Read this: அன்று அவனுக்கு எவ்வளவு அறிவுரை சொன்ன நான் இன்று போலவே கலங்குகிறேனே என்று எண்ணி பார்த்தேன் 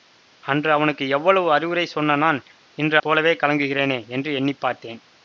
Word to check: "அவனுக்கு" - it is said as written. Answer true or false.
true